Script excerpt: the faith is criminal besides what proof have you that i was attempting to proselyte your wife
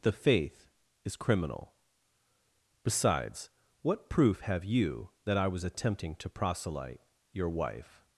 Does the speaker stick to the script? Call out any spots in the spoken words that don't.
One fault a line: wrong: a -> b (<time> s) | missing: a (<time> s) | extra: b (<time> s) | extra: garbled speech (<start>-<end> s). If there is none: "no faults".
no faults